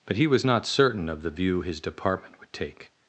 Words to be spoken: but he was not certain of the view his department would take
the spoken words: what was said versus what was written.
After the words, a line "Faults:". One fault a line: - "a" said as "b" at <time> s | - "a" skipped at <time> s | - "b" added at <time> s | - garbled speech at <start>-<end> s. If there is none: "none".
but he was not certain of the view his department would take
Faults:
none